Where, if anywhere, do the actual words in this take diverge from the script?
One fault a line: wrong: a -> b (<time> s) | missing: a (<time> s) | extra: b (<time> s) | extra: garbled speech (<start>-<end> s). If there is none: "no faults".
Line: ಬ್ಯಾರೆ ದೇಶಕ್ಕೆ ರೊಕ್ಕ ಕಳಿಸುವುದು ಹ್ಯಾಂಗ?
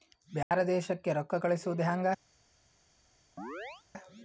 no faults